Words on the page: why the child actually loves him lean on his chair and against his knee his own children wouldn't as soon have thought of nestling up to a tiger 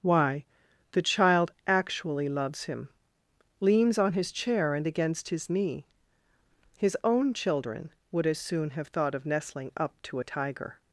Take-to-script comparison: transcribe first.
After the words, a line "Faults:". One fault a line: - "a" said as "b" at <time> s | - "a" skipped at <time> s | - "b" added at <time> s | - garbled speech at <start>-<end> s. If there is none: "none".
why the child actually loves him leans on his chair and against his knee his own children would as soon have thought of nestling up to a tiger
Faults:
- "lean" said as "leans" at 3.6 s
- "wouldn't" said as "would" at 8.1 s